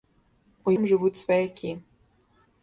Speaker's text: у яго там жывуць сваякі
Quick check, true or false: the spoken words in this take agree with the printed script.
false